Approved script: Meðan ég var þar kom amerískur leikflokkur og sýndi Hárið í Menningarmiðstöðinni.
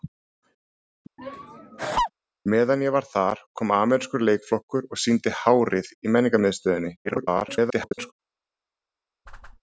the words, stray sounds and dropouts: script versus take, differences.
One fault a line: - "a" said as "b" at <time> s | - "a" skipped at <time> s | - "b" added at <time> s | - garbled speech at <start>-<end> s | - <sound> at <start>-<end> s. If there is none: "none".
- laugh at 1.2-2.1 s
- garbled speech at 7.0-8.1 s
- whoosh at 9.3-9.6 s